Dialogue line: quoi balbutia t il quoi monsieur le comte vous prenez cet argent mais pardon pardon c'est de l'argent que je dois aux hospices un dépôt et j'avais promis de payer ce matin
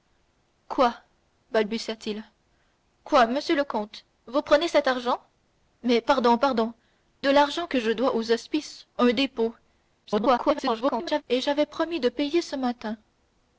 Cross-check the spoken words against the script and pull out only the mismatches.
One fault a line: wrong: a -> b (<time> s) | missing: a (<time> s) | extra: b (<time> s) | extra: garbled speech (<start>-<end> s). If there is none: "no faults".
missing: c'est (6.7 s)
extra: garbled speech (10.0-11.2 s)